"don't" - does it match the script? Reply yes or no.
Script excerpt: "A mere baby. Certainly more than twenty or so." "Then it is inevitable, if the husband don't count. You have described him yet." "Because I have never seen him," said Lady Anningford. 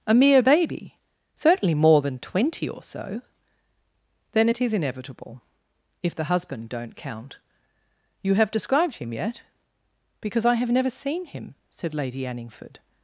yes